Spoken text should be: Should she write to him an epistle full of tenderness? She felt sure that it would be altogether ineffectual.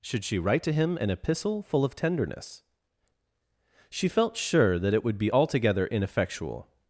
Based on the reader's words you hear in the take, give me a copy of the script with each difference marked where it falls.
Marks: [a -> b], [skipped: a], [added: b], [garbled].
Should she write to him an epistle full of tenderness? She felt sure that it would be altogether ineffectual.